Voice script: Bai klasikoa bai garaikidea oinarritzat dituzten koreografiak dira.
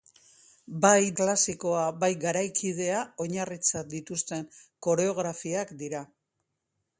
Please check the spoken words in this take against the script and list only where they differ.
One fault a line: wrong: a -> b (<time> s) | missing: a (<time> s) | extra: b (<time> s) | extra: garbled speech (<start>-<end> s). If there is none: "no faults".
no faults